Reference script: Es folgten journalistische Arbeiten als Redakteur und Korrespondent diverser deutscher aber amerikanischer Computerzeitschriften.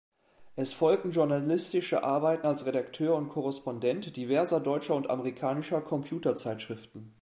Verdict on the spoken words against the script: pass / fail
fail